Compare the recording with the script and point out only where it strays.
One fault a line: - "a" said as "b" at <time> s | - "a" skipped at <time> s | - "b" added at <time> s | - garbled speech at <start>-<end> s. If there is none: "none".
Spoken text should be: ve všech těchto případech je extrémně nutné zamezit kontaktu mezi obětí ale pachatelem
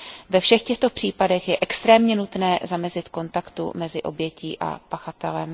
- "ale" said as "a" at 4.6 s